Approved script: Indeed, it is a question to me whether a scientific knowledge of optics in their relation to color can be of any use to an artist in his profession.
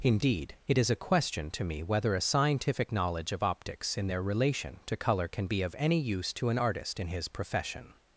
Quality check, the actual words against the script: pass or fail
pass